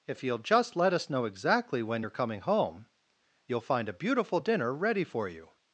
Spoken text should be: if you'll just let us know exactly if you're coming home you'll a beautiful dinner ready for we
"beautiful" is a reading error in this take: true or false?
false